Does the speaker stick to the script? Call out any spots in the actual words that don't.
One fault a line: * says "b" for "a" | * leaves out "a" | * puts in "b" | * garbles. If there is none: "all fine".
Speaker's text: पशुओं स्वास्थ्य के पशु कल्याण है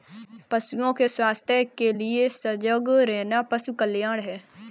* puts in "के"
* puts in "लिए सजग रहना"